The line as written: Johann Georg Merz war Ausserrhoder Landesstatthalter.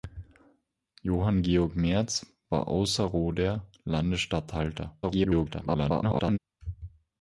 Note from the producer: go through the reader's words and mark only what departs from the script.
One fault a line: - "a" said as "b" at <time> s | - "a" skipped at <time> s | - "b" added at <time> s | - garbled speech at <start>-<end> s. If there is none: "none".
- garbled speech at 5.0-6.4 s